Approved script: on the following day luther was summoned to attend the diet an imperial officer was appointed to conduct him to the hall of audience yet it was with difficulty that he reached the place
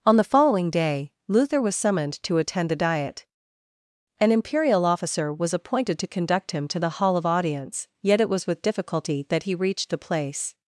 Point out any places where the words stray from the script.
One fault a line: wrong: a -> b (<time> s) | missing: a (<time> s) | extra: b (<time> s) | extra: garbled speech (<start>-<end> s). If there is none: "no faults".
no faults